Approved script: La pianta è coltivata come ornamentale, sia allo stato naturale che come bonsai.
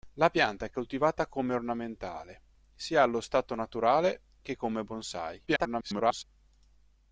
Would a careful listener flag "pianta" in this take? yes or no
no